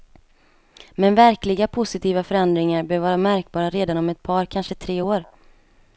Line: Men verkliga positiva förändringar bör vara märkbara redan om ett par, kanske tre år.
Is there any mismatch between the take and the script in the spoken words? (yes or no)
no